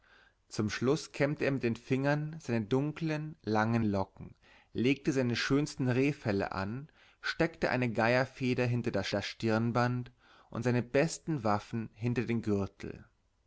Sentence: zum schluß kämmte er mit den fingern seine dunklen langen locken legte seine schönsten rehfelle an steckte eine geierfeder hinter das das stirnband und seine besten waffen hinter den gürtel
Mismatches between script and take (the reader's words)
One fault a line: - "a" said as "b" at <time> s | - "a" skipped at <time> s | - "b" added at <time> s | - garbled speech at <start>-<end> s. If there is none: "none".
none